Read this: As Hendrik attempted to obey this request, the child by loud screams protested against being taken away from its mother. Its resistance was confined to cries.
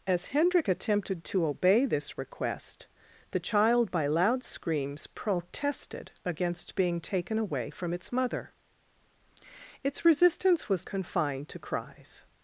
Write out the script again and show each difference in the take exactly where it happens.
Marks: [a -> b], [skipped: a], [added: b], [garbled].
As Hendrik attempted to obey this request, the child by loud screams protested against being taken away from its mother. Its resistance was confined to cries.